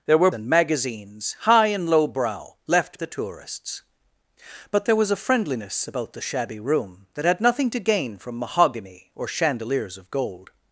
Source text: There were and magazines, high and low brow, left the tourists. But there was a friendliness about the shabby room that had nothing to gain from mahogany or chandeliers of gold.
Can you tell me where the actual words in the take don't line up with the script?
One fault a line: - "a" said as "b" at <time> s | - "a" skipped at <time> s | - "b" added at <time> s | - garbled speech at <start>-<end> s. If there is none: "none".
none